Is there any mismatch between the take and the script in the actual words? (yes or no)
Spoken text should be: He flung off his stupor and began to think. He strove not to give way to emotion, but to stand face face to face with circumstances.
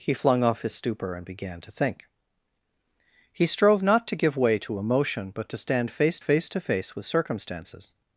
no